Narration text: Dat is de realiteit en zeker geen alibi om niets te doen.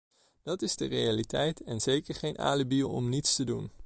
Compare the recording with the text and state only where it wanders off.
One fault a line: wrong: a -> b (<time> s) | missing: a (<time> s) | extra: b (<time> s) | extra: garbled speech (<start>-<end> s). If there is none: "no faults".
no faults